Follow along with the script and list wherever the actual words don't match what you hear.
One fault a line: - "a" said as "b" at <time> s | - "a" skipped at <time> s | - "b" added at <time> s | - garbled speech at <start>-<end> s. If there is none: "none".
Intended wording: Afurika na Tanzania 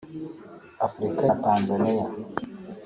none